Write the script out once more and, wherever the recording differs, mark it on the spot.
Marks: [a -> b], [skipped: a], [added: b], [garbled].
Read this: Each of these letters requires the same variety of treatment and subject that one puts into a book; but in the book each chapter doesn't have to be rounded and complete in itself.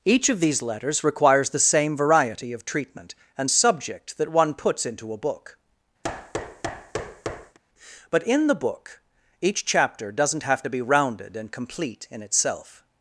Each of these letters requires the same variety of treatment and subject that one puts into a book; but in the book each chapter doesn't have to be rounded and complete in itself.